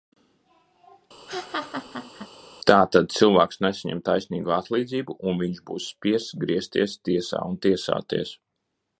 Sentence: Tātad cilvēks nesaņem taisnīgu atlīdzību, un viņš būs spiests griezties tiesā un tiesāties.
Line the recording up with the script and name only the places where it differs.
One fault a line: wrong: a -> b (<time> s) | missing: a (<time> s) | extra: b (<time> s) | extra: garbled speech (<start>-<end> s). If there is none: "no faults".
no faults